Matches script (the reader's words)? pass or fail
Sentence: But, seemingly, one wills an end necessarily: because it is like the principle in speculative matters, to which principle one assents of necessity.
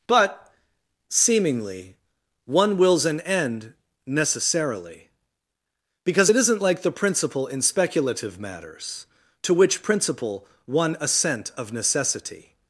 fail